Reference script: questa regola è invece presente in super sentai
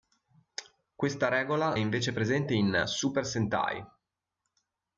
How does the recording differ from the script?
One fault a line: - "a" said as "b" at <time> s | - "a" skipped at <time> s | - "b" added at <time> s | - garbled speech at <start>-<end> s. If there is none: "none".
none